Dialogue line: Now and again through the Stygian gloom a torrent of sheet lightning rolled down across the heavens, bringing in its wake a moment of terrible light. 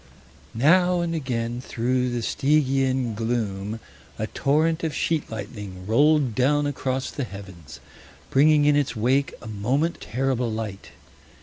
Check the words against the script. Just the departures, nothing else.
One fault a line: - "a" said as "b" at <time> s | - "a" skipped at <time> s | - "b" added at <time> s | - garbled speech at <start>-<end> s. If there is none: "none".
- "of" skipped at 10.0 s